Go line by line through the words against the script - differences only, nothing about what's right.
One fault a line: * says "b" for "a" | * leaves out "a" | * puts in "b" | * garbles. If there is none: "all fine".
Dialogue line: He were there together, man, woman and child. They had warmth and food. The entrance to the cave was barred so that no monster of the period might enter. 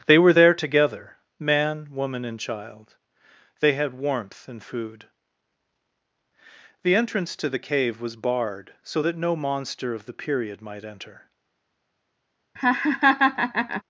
* says "They" for "He"